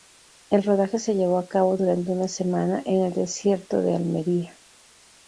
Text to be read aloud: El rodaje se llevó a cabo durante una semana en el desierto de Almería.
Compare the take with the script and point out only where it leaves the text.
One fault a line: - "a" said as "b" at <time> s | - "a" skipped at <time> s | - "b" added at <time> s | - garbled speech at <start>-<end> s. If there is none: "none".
none